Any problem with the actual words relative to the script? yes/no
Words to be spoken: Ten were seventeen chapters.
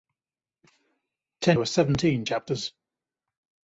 no